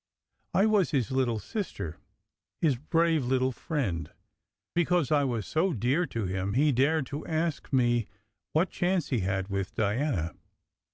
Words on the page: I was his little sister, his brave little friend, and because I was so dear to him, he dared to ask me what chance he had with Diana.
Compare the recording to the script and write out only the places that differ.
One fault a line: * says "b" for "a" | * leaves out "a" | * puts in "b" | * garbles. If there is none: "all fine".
* leaves out "and"